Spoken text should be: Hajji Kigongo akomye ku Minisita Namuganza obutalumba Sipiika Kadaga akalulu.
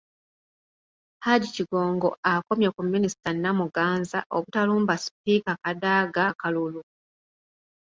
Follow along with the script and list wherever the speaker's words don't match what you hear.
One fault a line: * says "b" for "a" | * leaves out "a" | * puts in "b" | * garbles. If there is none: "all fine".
all fine